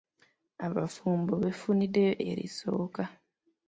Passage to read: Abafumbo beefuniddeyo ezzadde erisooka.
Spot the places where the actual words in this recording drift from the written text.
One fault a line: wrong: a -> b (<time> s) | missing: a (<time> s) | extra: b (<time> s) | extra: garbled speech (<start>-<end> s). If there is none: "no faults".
missing: ezzadde (2.1 s)